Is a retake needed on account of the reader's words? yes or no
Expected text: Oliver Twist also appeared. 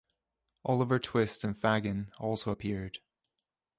yes